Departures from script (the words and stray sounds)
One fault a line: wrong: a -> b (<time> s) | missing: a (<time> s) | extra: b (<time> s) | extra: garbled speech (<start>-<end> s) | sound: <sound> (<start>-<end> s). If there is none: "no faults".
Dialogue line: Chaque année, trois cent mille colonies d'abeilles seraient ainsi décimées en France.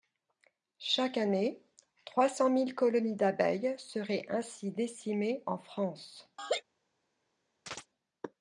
sound: laugh (6.4-6.6 s)
sound: chirp (7.7-7.9 s)